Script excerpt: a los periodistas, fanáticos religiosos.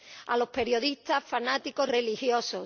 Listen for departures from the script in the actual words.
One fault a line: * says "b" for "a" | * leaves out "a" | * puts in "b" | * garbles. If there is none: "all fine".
all fine